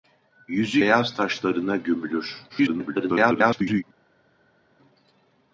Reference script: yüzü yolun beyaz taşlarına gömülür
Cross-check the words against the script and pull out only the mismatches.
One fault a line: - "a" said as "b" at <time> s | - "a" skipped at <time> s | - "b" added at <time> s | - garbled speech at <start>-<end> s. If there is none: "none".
- "yolun" skipped at 0.8 s
- garbled speech at 2.5-3.8 s